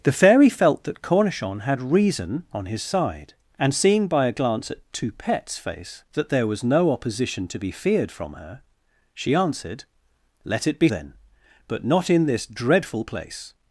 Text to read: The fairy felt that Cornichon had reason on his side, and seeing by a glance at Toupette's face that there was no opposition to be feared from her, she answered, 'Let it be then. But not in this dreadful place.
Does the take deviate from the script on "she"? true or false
false